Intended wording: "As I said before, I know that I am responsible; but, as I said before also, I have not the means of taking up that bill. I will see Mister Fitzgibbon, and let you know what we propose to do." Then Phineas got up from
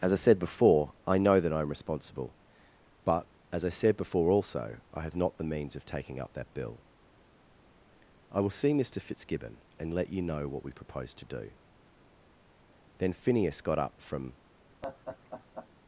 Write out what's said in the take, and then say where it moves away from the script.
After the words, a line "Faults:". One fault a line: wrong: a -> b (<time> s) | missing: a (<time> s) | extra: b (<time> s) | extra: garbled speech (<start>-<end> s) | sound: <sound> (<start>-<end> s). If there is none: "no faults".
"As I said before, I know that I am responsible; but, as I said before also, I have not the means of taking up that bill. I will see Mister Fitzgibbon, and let you know what we propose to do." Then Phineas got up from
Faults:
sound: laugh (14.8-15.7 s)